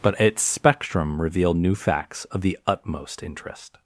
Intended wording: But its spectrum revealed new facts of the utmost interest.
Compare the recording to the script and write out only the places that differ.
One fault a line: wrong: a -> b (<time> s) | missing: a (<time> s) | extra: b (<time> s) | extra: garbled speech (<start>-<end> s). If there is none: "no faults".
no faults